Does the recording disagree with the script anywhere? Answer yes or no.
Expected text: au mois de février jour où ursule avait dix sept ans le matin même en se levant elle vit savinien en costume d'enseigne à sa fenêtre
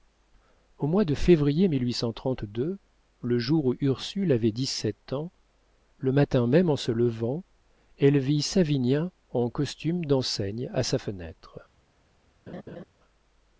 yes